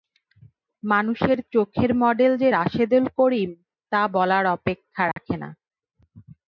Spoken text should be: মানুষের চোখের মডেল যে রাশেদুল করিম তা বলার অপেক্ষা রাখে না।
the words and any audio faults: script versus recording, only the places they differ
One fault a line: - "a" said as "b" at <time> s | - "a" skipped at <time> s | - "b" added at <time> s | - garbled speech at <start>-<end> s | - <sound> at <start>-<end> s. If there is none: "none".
- dropout at 5.1-5.2 s